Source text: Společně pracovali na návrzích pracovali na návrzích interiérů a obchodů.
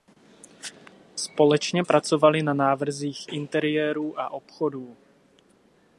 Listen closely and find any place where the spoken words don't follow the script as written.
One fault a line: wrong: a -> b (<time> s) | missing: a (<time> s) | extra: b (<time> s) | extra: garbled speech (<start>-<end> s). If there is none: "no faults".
missing: pracovali na návrzích (3.3 s)